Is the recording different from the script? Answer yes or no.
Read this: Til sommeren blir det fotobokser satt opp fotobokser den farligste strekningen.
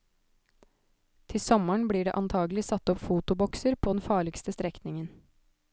yes